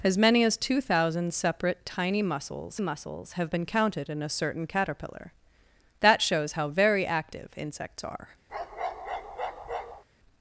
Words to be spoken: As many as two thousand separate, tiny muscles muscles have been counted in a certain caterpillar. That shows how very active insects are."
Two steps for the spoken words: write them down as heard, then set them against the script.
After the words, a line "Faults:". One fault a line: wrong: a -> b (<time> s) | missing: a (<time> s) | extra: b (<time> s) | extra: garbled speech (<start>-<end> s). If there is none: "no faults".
As many as two thousand separate, tiny muscles muscles have been counted in a certain caterpillar. That shows how very active insects are."
Faults:
no faults